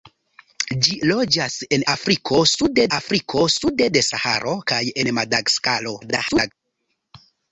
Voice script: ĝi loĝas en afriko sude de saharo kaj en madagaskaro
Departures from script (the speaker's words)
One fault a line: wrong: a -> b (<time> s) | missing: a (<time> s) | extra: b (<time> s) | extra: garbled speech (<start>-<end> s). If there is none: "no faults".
extra: afriko sude (3.0 s)
extra: garbled speech (6.0-6.5 s)